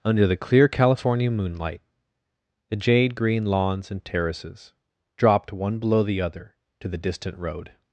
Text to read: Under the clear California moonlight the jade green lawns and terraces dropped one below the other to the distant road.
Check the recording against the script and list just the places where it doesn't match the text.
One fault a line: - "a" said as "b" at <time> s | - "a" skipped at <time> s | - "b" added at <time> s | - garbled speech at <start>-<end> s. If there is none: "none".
none